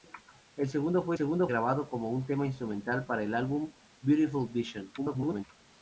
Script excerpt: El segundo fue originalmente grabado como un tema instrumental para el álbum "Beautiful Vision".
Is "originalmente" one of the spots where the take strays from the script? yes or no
yes